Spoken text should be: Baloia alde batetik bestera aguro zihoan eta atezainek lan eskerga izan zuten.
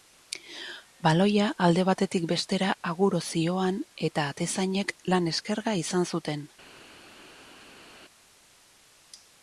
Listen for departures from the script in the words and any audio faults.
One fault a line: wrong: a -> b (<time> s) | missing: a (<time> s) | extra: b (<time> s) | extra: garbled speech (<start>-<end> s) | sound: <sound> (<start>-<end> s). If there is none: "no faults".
no faults